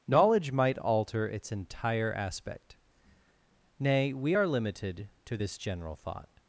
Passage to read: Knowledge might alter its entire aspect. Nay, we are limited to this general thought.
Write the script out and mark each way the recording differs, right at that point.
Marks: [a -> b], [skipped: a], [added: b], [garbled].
Knowledge might alter its entire aspect. Nay, we are limited to this general thought.